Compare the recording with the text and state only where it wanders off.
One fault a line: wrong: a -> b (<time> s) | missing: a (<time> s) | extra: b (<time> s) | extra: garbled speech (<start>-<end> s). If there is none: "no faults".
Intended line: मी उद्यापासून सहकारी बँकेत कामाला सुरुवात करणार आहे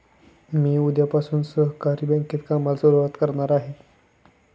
no faults